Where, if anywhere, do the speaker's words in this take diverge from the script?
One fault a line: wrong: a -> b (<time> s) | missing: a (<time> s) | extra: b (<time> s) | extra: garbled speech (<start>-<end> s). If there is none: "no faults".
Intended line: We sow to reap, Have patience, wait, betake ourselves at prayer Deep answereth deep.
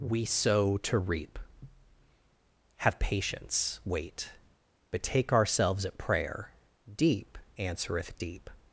no faults